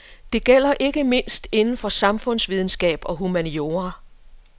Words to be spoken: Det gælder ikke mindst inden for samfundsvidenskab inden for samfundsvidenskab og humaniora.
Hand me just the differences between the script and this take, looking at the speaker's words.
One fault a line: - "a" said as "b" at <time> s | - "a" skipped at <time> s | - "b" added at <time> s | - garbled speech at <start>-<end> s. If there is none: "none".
- "inden for samfundsvidenskab" skipped at 3.0 s